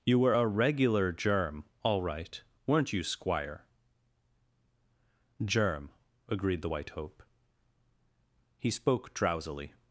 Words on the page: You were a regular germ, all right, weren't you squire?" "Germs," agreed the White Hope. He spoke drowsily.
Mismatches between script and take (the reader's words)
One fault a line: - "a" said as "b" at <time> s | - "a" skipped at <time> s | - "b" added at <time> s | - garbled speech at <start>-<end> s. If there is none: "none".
- "Germs" said as "Germ" at 5.4 s